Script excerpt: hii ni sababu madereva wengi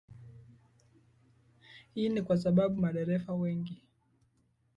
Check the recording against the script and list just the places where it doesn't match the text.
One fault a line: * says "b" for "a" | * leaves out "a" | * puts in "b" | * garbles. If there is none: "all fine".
* puts in "kwa"